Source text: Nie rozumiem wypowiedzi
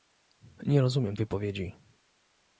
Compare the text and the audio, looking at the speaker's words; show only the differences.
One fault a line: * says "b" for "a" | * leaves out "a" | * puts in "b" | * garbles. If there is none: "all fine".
all fine